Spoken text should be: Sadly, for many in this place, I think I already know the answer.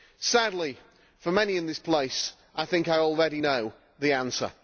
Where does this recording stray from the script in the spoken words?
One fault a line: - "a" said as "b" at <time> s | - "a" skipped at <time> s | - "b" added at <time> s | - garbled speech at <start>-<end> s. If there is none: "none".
none